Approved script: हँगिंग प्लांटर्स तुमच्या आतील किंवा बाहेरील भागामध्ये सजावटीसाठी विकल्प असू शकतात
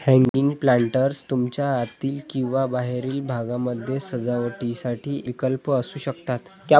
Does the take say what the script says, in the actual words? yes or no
yes